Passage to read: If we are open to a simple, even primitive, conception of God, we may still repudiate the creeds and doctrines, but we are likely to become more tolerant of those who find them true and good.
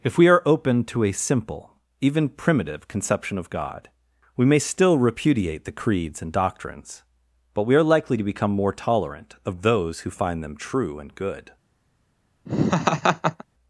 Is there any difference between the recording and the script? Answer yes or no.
no